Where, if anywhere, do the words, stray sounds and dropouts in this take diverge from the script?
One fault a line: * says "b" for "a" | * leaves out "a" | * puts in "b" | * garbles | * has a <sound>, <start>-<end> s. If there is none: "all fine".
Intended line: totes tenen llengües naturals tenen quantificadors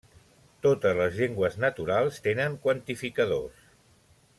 * says "les" for "tenen"